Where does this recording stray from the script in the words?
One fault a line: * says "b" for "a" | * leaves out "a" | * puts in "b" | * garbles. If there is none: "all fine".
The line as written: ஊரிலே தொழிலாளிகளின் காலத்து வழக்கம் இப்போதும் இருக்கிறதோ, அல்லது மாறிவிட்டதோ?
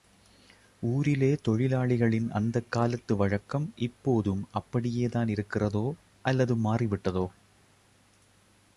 * puts in "அந்தக்"
* puts in "அப்படியேதான்"